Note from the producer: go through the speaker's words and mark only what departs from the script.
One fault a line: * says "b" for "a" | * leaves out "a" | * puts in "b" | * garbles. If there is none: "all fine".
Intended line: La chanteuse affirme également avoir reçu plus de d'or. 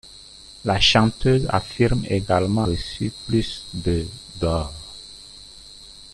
* leaves out "avoir"